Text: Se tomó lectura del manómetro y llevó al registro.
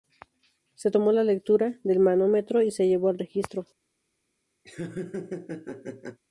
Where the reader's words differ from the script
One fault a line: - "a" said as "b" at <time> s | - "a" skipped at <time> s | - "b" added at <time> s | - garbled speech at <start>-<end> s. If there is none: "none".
- "la" added at 1.1 s
- "se" added at 2.7 s